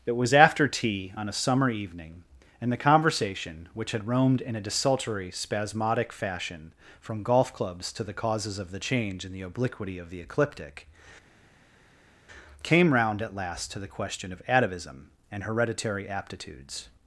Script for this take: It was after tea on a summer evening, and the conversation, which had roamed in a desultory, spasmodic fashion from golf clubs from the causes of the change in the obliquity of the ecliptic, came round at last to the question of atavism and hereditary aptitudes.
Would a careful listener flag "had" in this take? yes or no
no